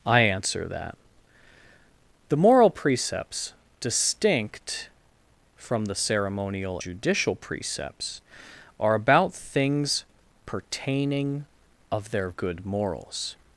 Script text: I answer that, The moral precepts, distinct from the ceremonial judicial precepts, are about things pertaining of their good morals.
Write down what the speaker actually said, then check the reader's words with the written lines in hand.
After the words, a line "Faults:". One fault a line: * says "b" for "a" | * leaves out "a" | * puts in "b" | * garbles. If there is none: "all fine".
I answer that, The moral precepts, distinct from the ceremonial judicial precepts, are about things pertaining of their good morals.
Faults:
all fine